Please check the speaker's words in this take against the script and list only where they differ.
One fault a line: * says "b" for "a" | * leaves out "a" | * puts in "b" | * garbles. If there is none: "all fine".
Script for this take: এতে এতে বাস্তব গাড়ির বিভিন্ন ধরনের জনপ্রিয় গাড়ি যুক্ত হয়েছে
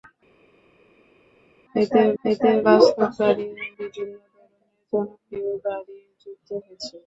all fine